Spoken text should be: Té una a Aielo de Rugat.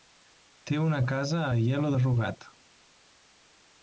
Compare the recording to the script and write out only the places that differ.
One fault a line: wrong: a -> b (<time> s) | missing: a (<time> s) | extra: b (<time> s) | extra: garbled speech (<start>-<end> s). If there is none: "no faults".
extra: casa (1.1 s)